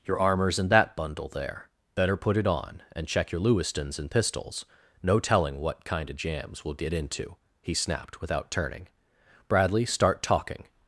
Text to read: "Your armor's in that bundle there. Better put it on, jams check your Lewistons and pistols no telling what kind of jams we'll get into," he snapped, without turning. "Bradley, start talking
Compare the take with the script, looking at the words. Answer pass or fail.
fail